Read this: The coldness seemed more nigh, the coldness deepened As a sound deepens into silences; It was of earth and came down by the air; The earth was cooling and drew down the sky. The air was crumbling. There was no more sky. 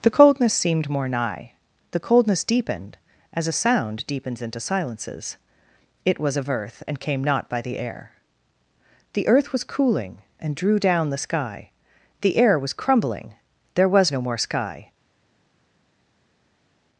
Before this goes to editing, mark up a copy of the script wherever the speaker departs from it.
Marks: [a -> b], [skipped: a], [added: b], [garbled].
The coldness seemed more nigh, the coldness deepened As a sound deepens into silences; It was of earth and came [down -> not] by the air; The earth was cooling and drew down the sky. The air was crumbling. There was no more sky.